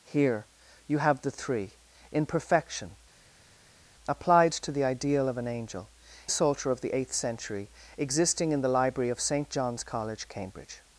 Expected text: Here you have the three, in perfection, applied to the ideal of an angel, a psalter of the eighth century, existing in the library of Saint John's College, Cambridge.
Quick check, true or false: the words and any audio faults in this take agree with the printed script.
true